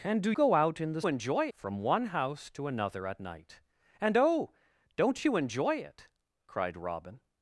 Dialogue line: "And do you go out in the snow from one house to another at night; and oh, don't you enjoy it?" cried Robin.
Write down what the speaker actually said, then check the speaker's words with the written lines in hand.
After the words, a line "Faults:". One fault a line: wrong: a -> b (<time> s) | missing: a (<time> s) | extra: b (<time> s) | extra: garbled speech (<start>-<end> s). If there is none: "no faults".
"And do go out in the enjoy from one house to another at night; and oh, don't you enjoy it?" cried Robin.
Faults:
missing: you (0.3 s)
wrong: snow -> enjoy (1.1 s)